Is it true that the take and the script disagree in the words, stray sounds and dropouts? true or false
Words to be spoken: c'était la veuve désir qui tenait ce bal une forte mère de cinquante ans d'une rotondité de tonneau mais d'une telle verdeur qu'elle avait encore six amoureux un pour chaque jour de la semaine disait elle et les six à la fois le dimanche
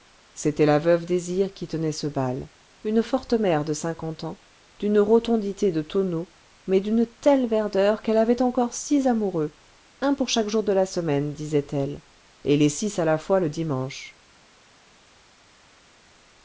false